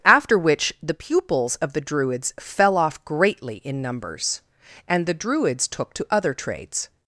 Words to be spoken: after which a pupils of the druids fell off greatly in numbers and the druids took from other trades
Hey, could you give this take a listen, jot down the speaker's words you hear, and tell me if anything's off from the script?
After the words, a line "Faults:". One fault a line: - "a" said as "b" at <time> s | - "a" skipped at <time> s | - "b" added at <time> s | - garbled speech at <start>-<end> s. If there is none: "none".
after which the pupils of the druids fell off greatly in numbers and the druids took to other trades
Faults:
- "a" said as "the" at 0.8 s
- "from" said as "to" at 5.9 s